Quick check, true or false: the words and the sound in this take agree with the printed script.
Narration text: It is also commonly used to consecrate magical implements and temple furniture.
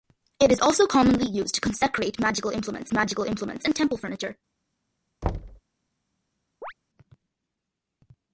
false